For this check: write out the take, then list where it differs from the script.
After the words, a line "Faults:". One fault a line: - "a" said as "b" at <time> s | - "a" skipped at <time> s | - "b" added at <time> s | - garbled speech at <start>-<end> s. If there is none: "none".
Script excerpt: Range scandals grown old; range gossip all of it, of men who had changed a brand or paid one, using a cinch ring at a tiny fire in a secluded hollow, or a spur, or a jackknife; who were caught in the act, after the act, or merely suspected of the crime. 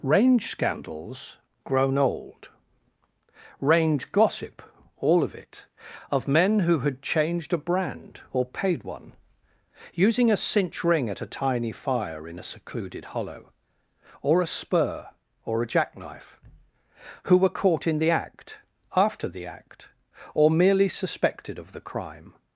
Range scandals grown old; range gossip all of it, of men who had changed a brand or paid one, using a cinch ring at a tiny fire in a secluded hollow, or a spur, or a jackknife; who were caught in the act, after the act, or merely suspected of the crime.
Faults:
none